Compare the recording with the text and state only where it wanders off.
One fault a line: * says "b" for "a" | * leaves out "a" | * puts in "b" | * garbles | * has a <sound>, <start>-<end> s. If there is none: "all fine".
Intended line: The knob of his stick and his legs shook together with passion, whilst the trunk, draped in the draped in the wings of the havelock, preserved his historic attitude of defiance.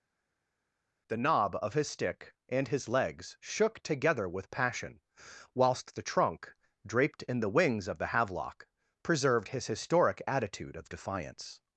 * leaves out "draped in the"